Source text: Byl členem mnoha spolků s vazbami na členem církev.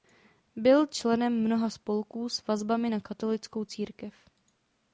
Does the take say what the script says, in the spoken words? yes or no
no